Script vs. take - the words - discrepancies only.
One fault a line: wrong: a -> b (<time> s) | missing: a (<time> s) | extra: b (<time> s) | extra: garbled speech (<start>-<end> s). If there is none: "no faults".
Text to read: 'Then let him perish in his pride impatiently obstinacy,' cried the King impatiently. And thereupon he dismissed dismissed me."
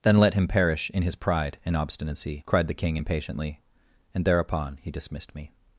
wrong: impatiently -> and (1.6 s)
missing: dismissed (5.4 s)